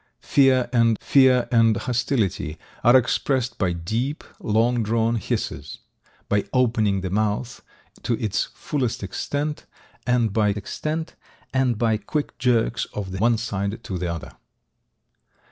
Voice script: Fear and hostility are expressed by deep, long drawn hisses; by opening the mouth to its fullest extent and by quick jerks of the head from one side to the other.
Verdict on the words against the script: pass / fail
fail